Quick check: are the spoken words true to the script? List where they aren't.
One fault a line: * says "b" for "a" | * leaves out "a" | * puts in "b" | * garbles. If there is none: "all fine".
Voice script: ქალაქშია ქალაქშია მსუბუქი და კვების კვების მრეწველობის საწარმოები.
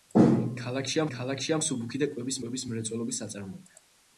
all fine